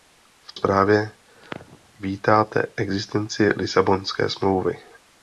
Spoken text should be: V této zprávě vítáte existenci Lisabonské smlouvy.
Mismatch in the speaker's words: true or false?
true